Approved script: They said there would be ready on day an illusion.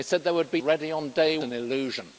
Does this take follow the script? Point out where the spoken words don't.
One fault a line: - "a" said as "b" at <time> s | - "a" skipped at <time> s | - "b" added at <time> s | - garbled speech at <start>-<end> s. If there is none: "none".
none